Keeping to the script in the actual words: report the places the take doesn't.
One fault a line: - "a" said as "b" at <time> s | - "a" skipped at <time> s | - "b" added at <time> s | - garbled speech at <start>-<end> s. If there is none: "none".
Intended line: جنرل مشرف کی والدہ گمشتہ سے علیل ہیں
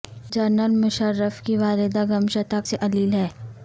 none